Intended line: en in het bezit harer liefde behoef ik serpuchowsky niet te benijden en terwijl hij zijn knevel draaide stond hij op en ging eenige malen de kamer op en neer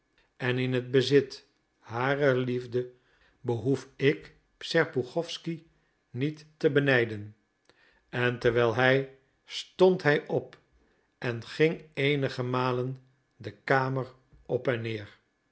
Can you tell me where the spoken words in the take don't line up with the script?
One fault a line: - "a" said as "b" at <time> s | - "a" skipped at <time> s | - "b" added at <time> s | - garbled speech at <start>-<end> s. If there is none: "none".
- "zijn knevel draaide" skipped at 9.2 s